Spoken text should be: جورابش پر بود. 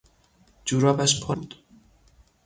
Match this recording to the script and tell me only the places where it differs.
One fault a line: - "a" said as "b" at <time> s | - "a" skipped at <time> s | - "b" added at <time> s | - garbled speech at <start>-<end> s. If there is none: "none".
none